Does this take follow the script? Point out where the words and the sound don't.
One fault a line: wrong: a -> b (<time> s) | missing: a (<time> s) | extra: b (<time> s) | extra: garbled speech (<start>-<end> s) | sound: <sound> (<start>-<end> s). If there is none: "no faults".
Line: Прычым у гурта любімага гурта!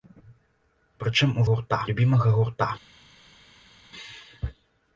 no faults